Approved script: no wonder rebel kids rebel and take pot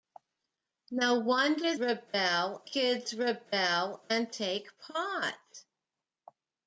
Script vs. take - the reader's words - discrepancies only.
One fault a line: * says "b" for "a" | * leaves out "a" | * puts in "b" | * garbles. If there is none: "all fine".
all fine